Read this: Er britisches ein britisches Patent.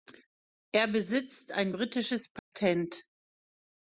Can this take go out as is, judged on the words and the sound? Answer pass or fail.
fail